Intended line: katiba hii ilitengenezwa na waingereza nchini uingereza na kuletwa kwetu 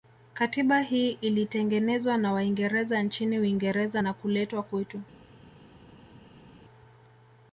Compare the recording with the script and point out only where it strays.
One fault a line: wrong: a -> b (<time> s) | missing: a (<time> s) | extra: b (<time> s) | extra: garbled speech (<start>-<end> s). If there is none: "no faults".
no faults